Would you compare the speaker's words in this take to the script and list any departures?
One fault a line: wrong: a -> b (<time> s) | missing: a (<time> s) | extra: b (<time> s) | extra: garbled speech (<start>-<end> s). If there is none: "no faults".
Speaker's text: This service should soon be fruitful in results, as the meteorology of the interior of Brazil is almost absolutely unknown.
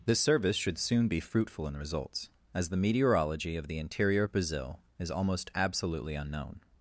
no faults